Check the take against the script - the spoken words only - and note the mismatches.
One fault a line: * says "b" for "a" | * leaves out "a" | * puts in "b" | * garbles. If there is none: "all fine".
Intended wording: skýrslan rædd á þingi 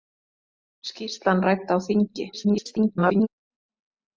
* garbles